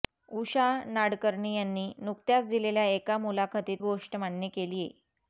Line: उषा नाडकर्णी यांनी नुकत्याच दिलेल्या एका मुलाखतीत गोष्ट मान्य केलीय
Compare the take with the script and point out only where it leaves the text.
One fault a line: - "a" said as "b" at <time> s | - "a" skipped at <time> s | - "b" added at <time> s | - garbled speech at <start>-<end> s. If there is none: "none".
none